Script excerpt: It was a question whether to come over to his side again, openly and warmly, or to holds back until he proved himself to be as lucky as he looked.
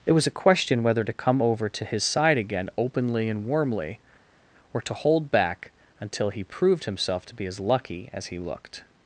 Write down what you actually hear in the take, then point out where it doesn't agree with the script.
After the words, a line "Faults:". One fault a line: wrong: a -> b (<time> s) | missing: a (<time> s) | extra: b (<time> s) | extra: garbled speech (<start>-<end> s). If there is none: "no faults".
It was a question whether to come over to his side again, openly and warmly, or to hold back until he proved himself to be as lucky as he looked.
Faults:
wrong: holds -> hold (4.9 s)